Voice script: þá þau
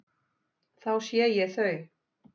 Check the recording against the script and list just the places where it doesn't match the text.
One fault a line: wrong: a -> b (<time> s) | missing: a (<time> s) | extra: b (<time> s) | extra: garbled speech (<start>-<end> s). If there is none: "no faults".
extra: sé ég (1.1 s)